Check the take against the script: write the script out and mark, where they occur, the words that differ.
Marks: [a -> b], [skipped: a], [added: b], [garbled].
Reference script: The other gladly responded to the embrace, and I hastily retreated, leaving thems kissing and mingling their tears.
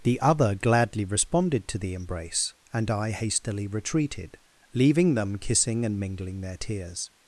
The other gladly responded to the embrace, and I hastily retreated, leaving [thems -> them] kissing and mingling their tears.